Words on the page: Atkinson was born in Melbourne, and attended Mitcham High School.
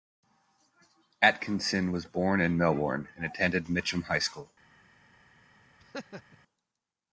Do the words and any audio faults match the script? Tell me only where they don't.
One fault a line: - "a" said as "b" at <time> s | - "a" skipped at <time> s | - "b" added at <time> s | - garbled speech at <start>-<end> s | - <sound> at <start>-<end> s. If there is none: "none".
- laugh at 5.8-6.4 s